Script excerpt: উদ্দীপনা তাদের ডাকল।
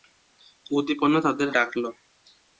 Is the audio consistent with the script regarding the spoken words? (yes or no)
yes